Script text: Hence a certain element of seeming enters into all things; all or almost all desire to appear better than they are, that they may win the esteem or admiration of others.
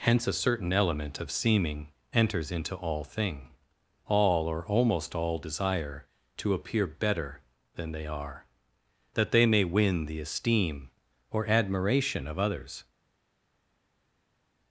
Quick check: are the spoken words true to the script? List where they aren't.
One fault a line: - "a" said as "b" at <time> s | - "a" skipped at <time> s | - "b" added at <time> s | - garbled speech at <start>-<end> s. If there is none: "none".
- "things" said as "thing" at 3.0 s